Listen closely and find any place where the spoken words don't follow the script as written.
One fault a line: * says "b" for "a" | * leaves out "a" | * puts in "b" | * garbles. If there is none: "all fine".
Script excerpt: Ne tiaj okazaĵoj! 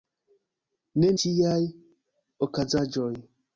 all fine